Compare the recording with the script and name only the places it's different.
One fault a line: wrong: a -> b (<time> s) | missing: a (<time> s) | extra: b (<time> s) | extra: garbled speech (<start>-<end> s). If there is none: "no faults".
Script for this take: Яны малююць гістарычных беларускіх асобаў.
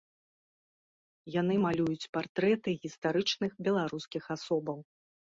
extra: партрэты (2.2 s)